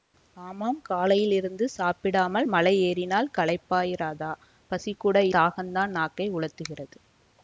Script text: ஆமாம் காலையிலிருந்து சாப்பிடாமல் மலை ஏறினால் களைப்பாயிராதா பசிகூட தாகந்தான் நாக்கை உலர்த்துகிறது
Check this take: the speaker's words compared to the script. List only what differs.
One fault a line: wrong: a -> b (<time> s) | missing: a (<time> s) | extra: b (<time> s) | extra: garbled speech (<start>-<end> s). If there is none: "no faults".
no faults